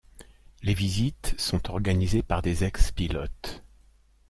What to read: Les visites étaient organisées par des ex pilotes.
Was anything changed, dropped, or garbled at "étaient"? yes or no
yes